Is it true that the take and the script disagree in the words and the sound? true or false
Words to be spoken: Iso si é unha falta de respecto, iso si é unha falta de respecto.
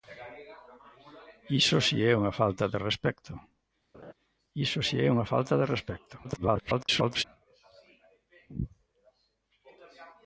true